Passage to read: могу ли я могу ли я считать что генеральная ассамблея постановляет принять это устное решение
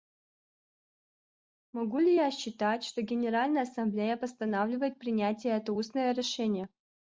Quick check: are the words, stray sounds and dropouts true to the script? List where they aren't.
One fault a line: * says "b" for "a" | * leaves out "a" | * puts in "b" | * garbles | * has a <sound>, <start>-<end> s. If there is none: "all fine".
* leaves out "могу ли я"